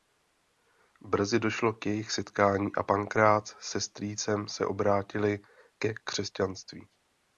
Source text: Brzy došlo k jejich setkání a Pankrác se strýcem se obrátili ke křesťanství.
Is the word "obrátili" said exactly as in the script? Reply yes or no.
yes